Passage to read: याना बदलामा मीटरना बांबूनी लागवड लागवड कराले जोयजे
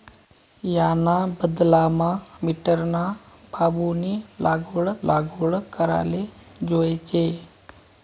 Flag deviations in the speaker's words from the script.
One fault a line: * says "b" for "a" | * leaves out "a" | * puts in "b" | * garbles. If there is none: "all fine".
all fine